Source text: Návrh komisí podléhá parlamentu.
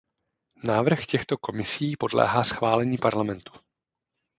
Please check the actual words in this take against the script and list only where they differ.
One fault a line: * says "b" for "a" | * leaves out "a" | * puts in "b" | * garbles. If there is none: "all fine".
* puts in "těchto"
* puts in "schválení"